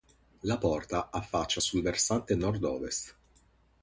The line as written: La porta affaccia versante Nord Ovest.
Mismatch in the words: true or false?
true